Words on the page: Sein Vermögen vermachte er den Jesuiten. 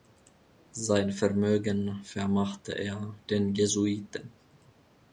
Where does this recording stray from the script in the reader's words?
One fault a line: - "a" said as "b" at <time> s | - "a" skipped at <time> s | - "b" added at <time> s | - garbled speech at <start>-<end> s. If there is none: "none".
none